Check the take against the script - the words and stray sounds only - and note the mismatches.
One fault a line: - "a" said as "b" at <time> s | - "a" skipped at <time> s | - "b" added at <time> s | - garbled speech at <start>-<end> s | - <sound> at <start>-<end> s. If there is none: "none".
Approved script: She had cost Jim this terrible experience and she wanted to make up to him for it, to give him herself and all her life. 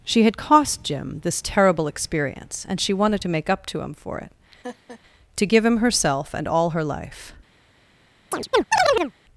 - laugh at 4.6-5.0 s
- chirp at 8.3-9.1 s